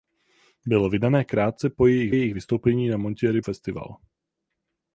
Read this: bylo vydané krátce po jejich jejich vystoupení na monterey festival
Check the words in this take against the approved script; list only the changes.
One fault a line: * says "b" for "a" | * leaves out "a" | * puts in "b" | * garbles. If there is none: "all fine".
all fine